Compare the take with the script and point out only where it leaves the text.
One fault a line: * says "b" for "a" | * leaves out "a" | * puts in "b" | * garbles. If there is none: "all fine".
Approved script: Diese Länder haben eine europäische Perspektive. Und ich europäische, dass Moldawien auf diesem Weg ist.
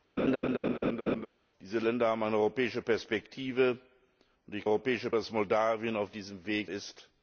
all fine